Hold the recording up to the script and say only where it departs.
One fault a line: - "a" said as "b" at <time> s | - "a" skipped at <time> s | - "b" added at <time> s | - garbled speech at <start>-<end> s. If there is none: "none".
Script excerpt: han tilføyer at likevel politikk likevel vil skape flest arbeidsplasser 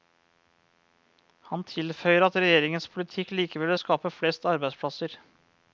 - "likevel" said as "regjeringens" at 2.4 s